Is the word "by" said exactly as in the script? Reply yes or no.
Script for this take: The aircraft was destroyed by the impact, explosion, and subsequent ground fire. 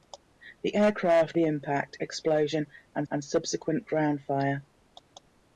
no